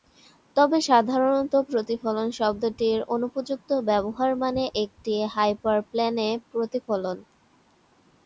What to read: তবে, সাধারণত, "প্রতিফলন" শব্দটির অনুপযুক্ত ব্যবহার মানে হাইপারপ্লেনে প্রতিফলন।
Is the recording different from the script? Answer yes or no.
yes